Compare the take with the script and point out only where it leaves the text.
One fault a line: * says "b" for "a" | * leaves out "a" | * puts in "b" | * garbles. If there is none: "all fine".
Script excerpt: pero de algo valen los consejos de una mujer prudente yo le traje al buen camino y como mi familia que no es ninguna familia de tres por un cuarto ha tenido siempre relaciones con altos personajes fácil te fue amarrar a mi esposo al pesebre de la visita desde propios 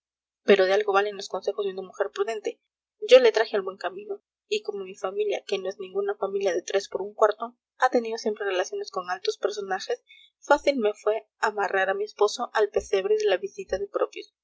* says "me" for "te"
* says "de" for "desde"